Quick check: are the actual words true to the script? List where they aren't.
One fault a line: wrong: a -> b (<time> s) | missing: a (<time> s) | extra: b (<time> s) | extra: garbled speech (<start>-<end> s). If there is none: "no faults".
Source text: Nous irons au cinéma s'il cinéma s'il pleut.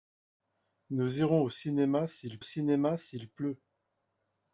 no faults